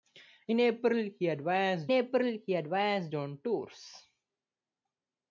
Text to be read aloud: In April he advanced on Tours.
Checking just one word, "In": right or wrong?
right